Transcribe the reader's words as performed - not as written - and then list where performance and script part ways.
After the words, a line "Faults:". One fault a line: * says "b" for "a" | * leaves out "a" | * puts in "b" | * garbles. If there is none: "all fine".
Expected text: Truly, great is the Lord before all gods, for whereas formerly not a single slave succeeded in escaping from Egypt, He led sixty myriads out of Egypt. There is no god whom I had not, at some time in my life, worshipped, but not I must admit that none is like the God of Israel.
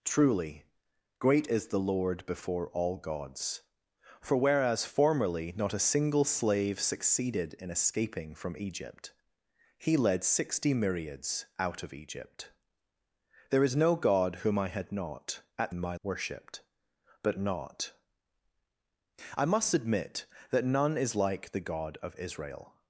Truly, great is the Lord before all gods, for whereas formerly not a single slave succeeded in escaping from Egypt, He led sixty myriads out of Egypt. There is no god whom I had not, at in my worshipped, but not I must admit that none is like the God of Israel.
Faults:
* leaves out "some time"
* leaves out "life"